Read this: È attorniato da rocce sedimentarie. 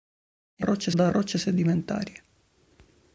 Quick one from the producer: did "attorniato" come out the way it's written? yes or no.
no